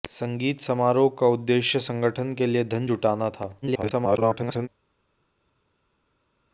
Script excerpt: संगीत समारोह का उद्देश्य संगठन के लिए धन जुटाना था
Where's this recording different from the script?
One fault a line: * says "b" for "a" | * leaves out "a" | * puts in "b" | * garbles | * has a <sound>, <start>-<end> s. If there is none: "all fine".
* garbles